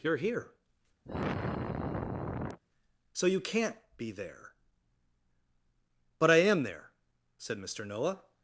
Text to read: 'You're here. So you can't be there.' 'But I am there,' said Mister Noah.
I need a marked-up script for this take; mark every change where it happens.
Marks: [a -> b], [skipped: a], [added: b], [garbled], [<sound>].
'You're here. [sigh] So you can't be there.' 'But I am there,' said Mister Noah.